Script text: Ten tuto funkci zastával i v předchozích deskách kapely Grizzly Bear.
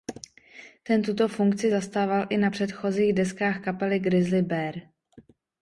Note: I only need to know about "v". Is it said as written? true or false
false